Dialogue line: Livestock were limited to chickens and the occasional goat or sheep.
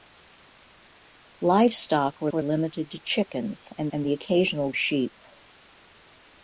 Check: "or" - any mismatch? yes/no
yes